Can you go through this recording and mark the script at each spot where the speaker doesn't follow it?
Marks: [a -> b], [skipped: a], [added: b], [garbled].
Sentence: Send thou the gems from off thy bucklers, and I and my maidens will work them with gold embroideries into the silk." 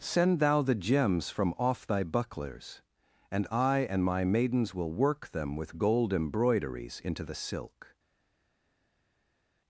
Send thou the gems from off thy bucklers, and I and my maidens will work them with gold embroideries into the silk."